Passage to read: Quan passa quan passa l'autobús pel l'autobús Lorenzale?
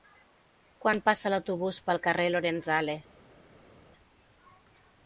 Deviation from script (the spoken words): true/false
true